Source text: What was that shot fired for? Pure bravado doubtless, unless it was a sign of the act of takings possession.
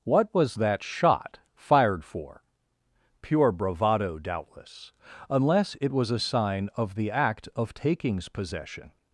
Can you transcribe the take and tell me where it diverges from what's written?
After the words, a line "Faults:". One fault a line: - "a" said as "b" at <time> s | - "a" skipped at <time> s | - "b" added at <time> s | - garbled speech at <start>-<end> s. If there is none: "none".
What was that shot fired for? Pure bravado doubtless, unless it was a sign of the act of takings possession.
Faults:
none